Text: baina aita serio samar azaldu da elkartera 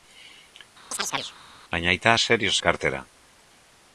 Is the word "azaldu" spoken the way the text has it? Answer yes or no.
no